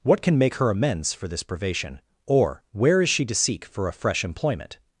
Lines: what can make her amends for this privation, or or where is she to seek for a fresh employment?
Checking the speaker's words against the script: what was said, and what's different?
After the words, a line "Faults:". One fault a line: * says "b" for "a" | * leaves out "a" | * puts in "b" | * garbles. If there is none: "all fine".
what can make her amends for this privation, or where is she to seek for a fresh employment?
Faults:
* leaves out "or"